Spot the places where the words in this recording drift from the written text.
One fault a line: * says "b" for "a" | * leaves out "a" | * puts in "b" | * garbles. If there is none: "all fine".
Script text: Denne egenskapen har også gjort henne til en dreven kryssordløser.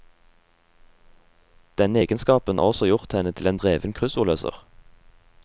all fine